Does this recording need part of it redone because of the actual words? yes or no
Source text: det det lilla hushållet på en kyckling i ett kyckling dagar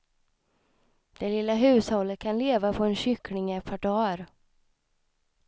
yes